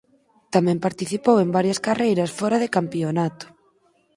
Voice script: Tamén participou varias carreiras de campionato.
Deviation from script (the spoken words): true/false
true